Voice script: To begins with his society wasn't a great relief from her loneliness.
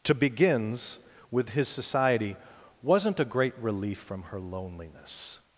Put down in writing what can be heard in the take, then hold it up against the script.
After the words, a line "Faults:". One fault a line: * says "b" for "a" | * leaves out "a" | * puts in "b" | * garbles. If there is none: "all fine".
To begins with his society wasn't a great relief from her loneliness.
Faults:
all fine